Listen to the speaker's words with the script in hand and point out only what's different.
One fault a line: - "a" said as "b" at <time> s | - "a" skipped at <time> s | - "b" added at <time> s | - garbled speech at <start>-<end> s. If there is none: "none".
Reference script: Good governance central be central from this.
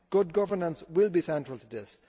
- "central" said as "will" at 0.9 s
- "from" said as "to" at 1.5 s